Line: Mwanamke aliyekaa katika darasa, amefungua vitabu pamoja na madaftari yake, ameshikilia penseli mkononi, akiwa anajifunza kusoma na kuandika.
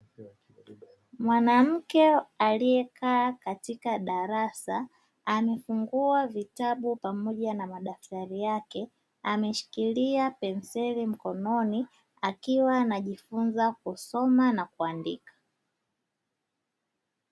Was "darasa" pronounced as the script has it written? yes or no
yes